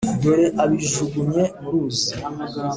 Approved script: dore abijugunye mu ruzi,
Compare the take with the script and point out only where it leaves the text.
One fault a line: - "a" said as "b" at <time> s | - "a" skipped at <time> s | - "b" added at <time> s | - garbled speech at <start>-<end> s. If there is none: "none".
none